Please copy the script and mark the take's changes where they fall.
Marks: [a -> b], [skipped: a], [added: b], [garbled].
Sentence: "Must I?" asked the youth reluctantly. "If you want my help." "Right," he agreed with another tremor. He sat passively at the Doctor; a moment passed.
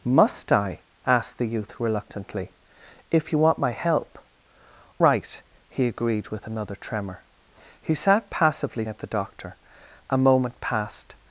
"Must I?" asked the youth reluctantly. "If you want my help." "Right," he agreed with another tremor. He sat passively at the Doctor; a moment passed.